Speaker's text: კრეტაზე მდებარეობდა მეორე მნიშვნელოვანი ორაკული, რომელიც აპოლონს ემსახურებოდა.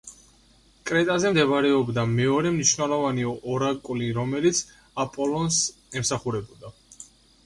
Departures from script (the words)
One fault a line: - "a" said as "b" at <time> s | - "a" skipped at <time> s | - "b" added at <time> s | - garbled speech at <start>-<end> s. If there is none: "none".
none